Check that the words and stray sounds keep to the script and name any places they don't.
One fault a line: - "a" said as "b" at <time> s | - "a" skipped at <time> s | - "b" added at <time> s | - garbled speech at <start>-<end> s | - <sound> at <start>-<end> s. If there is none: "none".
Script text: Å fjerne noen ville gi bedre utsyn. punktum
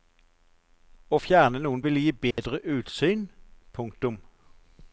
- dropout at 2.3-2.4 s